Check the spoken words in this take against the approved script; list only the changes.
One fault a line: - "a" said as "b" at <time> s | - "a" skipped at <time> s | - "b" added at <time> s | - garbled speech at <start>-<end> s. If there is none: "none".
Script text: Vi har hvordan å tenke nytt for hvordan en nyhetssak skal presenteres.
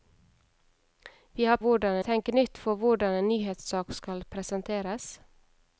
none